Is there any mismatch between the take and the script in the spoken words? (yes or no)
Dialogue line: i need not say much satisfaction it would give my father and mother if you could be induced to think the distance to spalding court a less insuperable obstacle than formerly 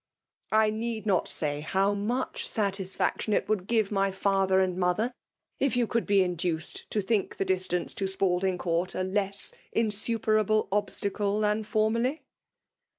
yes